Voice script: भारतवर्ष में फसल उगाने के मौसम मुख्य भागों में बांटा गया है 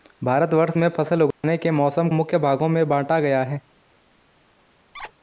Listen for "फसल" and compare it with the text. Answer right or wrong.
right